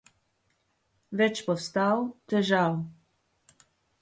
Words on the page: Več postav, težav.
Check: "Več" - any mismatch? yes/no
no